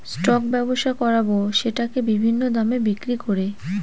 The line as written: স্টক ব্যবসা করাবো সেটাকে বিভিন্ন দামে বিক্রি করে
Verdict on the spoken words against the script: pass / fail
pass